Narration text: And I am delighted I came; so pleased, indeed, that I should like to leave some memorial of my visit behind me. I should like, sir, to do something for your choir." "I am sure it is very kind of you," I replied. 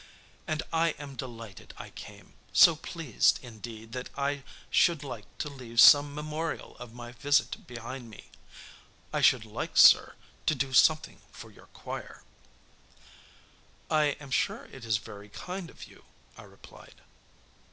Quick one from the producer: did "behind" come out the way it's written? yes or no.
yes